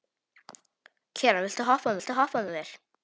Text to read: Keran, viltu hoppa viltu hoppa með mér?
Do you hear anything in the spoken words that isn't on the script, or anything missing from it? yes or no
no